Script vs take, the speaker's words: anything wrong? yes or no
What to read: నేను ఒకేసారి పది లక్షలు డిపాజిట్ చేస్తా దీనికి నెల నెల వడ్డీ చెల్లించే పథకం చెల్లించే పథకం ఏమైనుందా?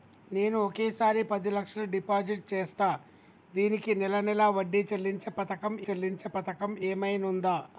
no